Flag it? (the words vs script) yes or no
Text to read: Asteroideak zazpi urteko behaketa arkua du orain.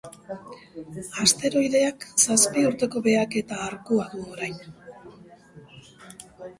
no